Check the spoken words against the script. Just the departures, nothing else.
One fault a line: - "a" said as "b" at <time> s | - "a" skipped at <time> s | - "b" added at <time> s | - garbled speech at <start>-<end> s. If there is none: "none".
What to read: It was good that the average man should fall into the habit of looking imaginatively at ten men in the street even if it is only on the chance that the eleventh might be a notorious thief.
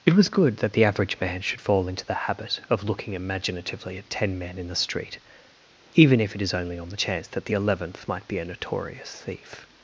none